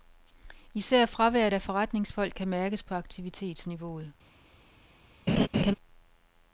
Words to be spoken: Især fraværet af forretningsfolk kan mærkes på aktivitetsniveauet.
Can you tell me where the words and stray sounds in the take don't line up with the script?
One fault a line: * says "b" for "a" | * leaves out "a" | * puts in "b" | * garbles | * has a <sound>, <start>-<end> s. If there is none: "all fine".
* has a laugh, 5.3-5.7 s